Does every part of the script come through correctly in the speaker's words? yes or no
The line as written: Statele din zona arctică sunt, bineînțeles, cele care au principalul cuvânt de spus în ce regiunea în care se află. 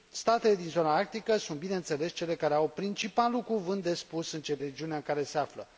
yes